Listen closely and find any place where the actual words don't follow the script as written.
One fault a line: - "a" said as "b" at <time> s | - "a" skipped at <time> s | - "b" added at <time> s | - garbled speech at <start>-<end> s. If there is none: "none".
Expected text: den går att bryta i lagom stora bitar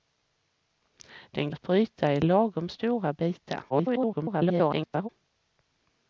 - "går" skipped at 1.5 s
- garbled speech at 3.7-5.1 s